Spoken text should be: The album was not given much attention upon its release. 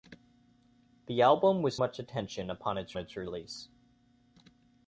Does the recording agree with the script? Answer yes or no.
no